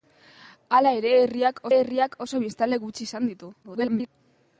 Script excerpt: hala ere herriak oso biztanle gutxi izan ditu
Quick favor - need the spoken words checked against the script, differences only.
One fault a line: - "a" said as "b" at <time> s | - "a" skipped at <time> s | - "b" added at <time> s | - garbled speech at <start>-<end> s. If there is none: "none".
- "herriak" added at 1.8 s
- garbled speech at 3.6-4.1 s